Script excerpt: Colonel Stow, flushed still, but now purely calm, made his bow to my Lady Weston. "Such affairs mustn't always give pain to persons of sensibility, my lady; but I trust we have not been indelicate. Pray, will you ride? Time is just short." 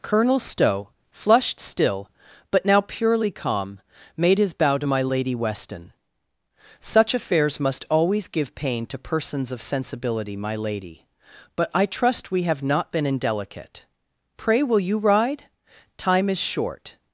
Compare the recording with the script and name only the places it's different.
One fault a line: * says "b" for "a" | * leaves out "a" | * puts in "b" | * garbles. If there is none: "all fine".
* says "must" for "mustn't"
* leaves out "just"